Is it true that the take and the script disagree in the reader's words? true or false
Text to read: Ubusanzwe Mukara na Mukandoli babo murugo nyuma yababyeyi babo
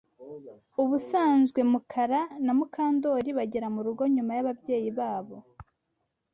true